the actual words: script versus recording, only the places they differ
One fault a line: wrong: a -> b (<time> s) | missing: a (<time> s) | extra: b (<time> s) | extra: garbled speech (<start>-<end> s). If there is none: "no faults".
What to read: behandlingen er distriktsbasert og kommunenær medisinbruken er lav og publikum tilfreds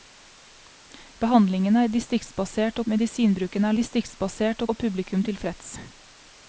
missing: kommunenær (2.9 s)
wrong: lav -> distriktsbasert (3.8 s)